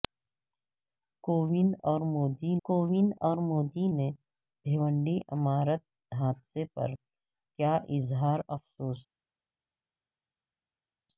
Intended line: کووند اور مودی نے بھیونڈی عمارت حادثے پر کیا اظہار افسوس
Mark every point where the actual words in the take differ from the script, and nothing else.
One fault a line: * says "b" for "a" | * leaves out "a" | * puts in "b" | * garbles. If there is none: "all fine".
* puts in "کووند اور مودی"